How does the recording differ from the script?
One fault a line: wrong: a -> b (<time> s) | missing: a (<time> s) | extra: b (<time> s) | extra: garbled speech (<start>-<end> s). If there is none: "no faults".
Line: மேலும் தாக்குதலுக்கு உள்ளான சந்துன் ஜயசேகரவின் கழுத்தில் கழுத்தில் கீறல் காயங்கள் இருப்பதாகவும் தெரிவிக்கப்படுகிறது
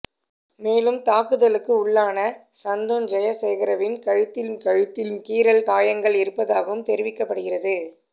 no faults